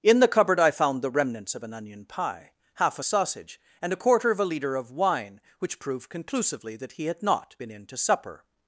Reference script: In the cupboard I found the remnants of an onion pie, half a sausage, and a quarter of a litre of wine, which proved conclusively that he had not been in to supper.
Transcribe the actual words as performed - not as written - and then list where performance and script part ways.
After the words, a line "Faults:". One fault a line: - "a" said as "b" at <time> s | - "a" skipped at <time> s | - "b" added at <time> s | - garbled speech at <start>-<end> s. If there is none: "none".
In the cupboard I found the remnants of an onion pie, half a sausage, and a quarter of a litre of wine, which proved conclusively that he had not been in to supper.
Faults:
none